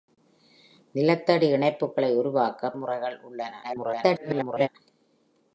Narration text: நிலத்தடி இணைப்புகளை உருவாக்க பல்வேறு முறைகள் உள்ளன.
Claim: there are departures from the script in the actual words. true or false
true